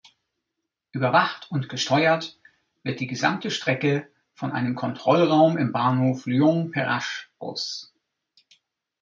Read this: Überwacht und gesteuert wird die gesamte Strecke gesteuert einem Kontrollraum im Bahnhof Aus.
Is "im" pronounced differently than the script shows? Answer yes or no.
no